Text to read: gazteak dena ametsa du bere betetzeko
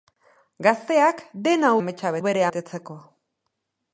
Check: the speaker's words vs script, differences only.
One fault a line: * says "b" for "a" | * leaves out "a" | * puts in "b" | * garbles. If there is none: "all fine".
all fine